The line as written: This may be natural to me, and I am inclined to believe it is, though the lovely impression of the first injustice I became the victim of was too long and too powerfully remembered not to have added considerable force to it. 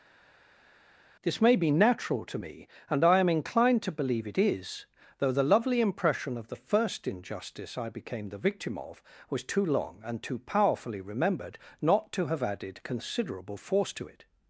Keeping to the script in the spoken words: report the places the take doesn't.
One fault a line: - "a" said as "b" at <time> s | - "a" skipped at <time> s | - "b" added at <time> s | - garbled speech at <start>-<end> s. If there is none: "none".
none